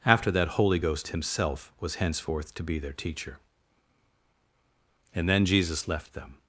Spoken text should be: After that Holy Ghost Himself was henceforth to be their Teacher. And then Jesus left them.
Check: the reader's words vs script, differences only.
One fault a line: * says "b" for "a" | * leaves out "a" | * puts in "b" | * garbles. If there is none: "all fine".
all fine